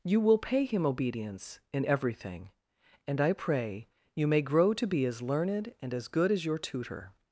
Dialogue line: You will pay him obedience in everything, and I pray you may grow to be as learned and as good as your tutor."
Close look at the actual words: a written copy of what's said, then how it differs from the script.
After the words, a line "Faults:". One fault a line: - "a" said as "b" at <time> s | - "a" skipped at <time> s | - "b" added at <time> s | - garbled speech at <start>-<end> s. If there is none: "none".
You will pay him obedience in everything, and I pray you may grow to be as learned and as good as your tutor."
Faults:
none